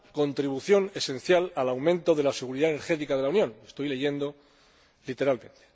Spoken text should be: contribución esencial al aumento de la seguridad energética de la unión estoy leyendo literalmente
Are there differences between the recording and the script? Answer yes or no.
no